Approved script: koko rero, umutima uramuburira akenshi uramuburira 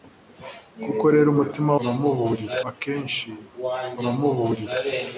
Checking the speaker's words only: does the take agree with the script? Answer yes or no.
yes